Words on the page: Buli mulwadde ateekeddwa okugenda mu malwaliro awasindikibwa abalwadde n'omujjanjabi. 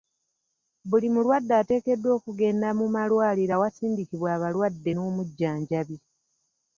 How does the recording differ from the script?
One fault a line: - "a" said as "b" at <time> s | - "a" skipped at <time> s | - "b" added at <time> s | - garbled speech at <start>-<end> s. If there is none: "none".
none